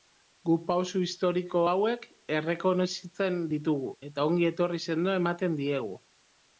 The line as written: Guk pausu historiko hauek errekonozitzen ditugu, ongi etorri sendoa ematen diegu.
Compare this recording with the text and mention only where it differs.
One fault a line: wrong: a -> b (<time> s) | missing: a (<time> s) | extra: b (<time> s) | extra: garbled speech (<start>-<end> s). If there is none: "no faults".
extra: eta (4.1 s)